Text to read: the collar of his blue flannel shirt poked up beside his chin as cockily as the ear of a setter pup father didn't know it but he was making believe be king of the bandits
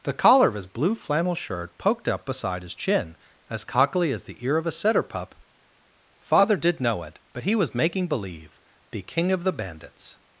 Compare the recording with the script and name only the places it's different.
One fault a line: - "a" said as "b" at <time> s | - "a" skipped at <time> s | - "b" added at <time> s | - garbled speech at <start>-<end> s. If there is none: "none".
- "didn't" said as "did" at 6.6 s